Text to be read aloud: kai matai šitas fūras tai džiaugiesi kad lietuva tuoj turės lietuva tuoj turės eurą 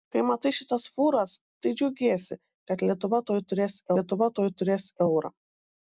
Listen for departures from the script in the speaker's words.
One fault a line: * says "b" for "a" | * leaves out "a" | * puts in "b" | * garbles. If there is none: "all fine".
all fine